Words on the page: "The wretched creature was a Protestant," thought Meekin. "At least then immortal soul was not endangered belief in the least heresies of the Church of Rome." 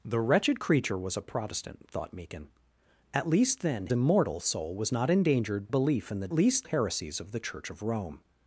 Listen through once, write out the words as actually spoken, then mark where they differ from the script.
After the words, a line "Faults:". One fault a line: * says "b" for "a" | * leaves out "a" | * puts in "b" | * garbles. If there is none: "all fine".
"The wretched creature was a Protestant," thought Meekin. "At least then immortal soul was not endangered belief in the least heresies of the Church of Rome."
Faults:
all fine